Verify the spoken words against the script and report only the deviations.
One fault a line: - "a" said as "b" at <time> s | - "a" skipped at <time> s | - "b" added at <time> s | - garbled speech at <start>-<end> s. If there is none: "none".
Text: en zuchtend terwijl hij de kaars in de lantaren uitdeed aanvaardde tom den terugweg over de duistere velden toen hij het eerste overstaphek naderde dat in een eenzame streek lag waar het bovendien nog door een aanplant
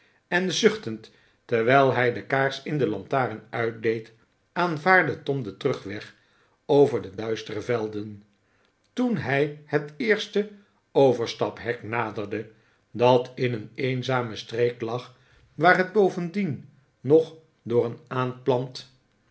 none